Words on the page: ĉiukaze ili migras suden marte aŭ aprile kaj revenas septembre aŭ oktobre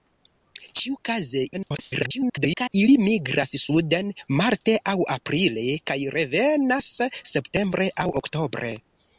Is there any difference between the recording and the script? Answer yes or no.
yes